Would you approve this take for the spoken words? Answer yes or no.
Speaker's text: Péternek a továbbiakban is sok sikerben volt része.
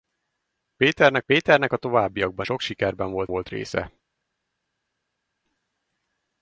no